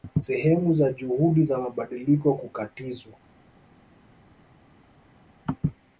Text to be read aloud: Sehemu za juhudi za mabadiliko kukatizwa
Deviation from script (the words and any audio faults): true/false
false